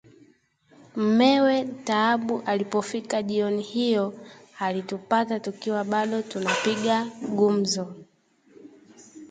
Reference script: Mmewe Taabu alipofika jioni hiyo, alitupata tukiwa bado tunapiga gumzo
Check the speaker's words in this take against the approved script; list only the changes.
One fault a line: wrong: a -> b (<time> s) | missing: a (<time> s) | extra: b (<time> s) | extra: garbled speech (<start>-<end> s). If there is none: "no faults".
no faults